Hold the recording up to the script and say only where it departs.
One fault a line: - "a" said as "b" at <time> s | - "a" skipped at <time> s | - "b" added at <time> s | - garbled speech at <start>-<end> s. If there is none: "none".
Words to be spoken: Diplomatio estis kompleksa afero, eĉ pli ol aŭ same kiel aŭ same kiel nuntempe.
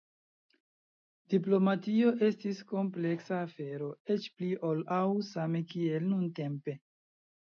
- "aŭ same kiel" skipped at 6.1 s